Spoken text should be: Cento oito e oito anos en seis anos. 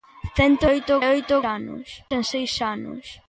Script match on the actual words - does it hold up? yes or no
yes